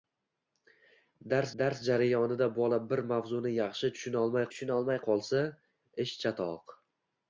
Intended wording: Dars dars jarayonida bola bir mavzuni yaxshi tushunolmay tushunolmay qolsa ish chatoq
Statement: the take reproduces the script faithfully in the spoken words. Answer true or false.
true